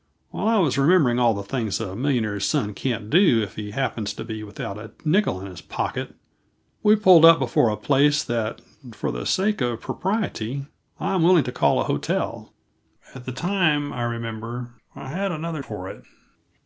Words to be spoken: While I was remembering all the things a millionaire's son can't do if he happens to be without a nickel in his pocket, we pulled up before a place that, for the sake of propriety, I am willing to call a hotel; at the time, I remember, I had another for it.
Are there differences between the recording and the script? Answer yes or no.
no